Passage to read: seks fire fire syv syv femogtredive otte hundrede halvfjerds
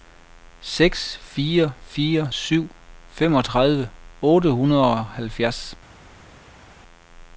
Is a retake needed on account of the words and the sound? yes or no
yes